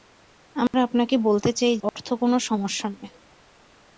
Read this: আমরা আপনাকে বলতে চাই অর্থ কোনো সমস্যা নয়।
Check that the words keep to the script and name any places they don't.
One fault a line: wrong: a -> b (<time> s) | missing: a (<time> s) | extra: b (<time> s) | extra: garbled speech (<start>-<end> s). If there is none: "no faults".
no faults